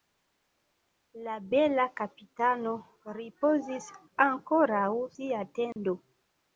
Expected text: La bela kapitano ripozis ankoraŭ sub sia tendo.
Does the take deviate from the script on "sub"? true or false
true